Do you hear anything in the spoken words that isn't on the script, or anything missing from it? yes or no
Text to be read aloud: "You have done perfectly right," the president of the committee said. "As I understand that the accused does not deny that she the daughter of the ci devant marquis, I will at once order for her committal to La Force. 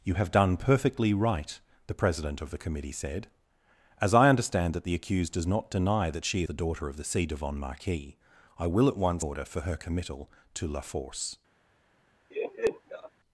no